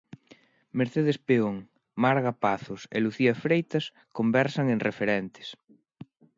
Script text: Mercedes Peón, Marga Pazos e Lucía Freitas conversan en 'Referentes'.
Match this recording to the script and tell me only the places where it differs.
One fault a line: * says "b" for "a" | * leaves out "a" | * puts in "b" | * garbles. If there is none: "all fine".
all fine